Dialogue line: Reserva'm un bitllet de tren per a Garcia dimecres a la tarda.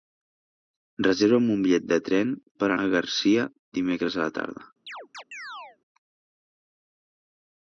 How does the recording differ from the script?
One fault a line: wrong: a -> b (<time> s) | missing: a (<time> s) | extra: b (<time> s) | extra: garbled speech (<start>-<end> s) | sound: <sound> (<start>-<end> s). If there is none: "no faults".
sound: chirp (4.9-5.8 s)